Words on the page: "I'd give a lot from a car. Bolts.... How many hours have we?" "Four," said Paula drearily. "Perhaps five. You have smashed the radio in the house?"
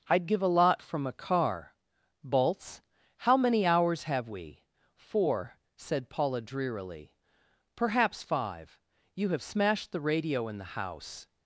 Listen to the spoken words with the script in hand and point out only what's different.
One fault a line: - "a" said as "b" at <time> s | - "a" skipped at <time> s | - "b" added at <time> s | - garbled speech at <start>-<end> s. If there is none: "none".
none